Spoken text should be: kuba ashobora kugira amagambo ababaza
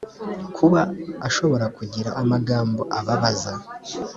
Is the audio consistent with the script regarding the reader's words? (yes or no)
yes